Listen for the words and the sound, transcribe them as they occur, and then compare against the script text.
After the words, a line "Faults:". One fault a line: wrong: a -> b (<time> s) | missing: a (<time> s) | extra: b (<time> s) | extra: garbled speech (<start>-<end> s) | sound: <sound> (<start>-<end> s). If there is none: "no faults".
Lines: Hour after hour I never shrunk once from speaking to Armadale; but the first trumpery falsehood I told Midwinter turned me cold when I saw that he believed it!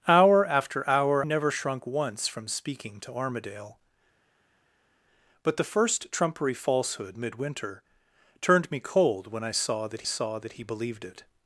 Hour after hour never shrunk once from speaking to Armadale; but the first trumpery falsehood Midwinter turned me cold when I saw that saw that he believed it!
Faults:
missing: I (1.2 s)
missing: I told (7.2 s)
extra: saw that (10.0 s)